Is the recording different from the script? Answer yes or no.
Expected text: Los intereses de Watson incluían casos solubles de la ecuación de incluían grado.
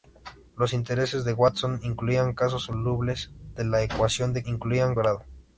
no